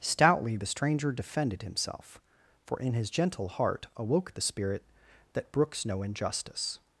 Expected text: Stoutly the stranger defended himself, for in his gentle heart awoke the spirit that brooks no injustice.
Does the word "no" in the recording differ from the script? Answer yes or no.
no